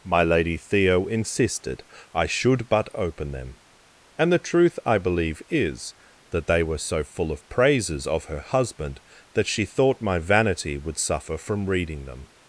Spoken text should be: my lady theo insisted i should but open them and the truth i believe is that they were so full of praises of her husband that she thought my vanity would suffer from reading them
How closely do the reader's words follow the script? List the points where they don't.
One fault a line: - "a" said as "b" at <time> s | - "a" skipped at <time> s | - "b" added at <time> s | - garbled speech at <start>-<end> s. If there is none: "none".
none